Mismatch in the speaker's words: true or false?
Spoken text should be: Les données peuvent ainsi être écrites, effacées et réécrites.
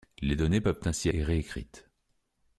true